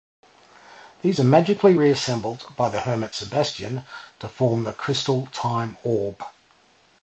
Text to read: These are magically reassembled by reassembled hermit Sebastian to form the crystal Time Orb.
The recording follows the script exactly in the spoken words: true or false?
false